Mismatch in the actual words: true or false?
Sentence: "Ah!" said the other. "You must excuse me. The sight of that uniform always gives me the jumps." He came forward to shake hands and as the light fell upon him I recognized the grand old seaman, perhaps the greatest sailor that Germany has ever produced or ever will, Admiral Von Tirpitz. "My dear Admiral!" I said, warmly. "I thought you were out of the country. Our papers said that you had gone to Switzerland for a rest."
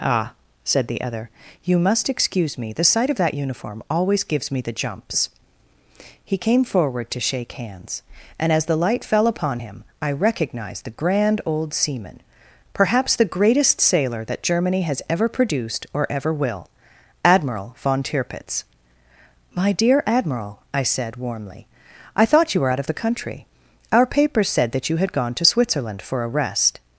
false